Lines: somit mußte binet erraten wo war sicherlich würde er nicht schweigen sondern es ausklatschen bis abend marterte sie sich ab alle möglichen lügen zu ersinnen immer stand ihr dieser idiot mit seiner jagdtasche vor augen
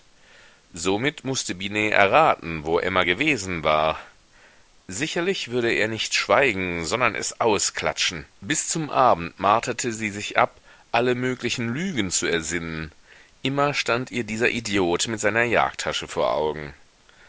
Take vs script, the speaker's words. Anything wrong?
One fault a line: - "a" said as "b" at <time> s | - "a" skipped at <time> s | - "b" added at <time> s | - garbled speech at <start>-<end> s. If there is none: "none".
- "emma gewesen" added at 2.8 s
- "zum" added at 8.7 s